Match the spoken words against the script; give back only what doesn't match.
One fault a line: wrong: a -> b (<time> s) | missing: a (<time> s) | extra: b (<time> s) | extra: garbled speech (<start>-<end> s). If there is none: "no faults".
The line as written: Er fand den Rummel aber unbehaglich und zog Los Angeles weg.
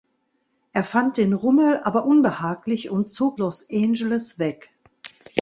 no faults